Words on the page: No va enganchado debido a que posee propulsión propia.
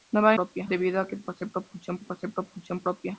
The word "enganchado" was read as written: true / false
false